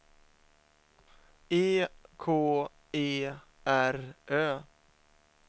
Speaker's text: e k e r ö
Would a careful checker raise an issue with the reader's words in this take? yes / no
no